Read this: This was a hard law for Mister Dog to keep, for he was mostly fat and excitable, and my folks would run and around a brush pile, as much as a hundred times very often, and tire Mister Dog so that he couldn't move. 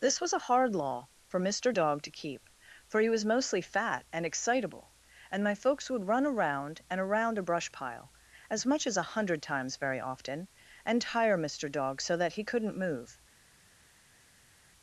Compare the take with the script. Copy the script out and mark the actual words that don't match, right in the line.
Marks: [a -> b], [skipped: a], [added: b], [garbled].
This was a hard law for Mister Dog to keep, for he was mostly fat and excitable, and my folks would run [added: around] and around a brush pile, as much as a hundred times very often, and tire Mister Dog so that he couldn't move.